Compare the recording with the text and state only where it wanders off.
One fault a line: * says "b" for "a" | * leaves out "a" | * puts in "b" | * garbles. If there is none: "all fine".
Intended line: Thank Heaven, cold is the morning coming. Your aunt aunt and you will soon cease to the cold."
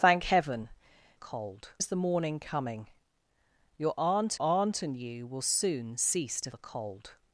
all fine